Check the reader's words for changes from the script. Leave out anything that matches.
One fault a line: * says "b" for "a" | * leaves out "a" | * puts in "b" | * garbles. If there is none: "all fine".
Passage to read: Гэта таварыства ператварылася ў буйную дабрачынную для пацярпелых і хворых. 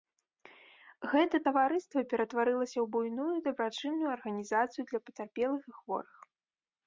* puts in "арганізацыю"